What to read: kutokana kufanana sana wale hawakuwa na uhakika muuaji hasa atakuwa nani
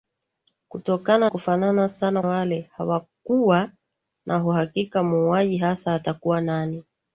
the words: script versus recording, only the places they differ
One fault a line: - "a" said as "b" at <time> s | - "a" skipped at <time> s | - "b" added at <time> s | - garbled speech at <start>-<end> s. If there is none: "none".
none